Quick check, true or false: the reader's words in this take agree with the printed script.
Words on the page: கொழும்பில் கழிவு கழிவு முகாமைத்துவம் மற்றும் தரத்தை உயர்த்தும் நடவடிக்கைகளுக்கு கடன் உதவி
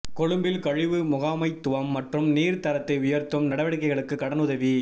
false